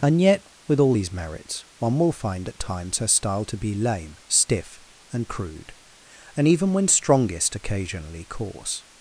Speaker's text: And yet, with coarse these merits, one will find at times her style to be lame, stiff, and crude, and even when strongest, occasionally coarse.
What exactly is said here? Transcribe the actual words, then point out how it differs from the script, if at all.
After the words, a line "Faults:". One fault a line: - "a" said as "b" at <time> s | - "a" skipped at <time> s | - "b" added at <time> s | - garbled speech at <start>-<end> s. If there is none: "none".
And yet, with all these merits, one will find at times her style to be lame, stiff, and crude, and even when strongest, occasionally coarse.
Faults:
- "coarse" said as "all" at 0.8 s